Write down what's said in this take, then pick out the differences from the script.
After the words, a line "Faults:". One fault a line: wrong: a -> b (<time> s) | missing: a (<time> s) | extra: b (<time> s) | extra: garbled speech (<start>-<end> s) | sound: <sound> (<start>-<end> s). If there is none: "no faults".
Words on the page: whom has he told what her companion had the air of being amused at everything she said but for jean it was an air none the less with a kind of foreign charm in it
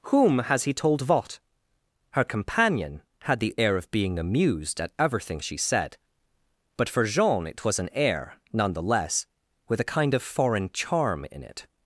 whom has he told what her companion had the air of being amused at everything she said but for jean it was an air none the less with a kind of foreign charm in it
Faults:
no faults